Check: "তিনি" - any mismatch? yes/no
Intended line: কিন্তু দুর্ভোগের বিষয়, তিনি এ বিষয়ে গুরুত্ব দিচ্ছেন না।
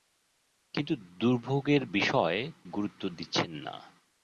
yes